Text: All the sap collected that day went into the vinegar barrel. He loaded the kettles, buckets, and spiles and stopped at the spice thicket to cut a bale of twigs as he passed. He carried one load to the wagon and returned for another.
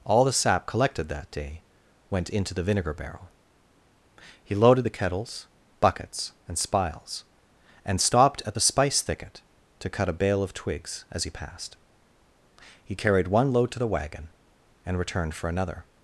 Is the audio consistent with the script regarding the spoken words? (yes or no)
yes